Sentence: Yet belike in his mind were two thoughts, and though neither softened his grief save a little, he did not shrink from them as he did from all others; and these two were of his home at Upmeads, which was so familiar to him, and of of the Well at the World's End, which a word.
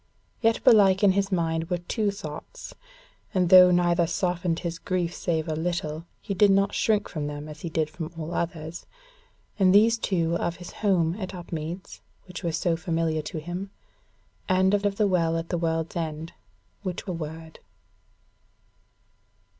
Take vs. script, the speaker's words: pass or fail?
pass